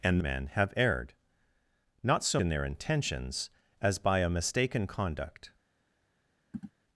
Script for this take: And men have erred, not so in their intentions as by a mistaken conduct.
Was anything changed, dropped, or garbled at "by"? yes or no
no